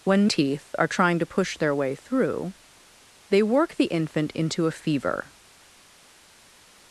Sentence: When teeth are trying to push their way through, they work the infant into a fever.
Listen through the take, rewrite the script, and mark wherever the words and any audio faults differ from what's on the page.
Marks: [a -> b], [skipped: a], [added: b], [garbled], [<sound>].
When teeth are trying to push their way through, they work the infant into a fever.